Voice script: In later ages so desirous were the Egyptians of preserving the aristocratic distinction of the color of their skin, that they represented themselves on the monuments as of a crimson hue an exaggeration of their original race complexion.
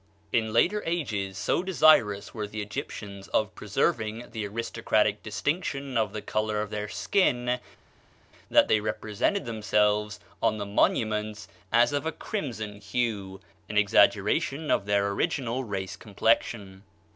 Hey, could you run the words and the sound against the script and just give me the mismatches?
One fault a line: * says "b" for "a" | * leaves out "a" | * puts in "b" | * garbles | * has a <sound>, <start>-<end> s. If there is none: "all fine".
all fine